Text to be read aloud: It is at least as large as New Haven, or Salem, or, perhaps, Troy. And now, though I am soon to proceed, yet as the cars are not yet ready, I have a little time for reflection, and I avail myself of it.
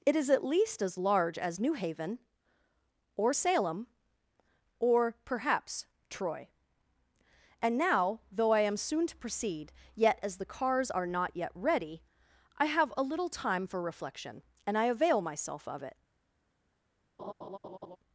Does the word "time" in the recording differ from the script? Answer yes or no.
no